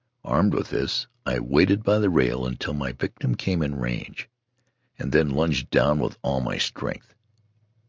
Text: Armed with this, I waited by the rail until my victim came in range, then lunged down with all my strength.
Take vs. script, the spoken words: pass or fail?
fail